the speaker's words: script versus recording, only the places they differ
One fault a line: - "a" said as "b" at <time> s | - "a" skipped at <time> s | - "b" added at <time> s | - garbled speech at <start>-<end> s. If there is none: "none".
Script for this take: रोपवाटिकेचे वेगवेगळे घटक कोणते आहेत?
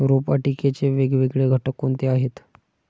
none